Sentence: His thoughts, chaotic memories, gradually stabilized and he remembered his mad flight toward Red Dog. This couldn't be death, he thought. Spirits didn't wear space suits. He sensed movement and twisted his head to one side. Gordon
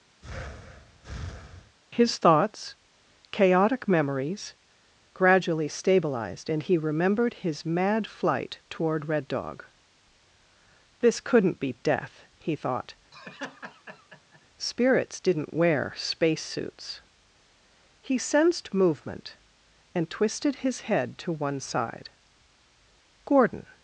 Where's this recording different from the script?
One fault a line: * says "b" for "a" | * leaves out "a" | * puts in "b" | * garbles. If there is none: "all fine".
all fine